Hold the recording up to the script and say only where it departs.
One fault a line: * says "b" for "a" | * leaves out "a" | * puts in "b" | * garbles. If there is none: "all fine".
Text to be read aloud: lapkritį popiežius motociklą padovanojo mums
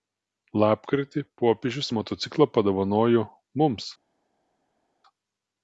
all fine